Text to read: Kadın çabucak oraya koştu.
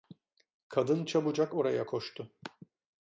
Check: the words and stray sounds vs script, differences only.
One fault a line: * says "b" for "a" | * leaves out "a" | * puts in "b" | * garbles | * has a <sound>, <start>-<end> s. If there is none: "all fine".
all fine